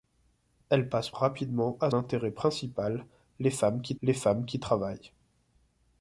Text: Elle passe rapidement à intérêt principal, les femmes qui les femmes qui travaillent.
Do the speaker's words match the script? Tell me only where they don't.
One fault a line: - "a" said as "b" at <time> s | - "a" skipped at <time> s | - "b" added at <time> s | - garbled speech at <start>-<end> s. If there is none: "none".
none